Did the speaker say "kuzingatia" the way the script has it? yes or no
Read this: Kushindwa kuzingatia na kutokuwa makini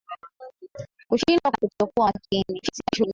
no